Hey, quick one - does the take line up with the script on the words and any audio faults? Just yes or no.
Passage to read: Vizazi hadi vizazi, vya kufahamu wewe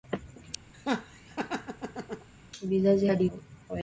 no